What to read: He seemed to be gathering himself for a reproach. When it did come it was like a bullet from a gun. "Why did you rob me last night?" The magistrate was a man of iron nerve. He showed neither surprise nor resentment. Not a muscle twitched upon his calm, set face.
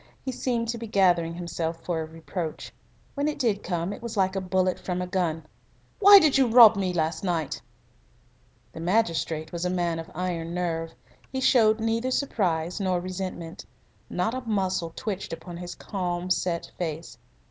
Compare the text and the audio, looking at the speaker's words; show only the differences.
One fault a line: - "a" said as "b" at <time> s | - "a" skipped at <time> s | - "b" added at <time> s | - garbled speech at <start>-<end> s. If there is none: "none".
none